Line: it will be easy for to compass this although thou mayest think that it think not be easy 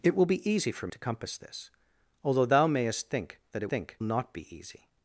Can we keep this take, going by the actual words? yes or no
yes